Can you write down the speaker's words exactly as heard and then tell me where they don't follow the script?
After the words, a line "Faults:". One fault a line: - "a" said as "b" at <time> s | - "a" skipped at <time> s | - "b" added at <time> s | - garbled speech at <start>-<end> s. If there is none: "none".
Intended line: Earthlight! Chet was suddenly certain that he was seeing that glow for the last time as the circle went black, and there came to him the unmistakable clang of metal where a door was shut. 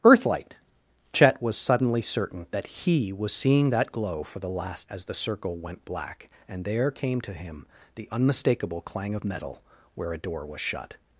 Earthlight! Chet was suddenly certain that he was seeing that glow for the last as the circle went black, and there came to him the unmistakable clang of metal where a door was shut.
Faults:
- "time" skipped at 4.9 s